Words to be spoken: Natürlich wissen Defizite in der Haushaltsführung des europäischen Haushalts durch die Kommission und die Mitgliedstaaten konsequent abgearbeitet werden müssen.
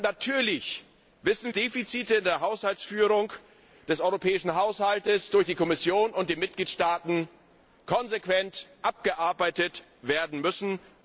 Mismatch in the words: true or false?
false